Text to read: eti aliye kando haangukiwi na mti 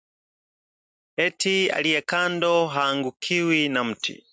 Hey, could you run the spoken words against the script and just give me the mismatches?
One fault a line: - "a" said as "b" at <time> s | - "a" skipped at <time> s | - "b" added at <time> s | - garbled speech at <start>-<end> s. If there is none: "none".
none